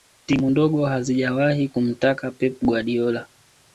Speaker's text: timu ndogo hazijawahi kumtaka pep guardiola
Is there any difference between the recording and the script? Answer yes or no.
no